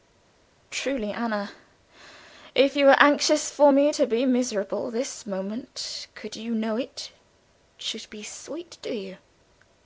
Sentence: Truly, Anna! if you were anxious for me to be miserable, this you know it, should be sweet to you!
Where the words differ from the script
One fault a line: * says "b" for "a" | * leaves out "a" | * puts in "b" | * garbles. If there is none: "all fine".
* puts in "moment could"